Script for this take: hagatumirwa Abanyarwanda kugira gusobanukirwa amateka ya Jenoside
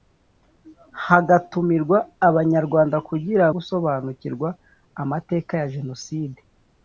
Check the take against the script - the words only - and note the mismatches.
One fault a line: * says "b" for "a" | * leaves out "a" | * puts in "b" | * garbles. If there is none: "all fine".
all fine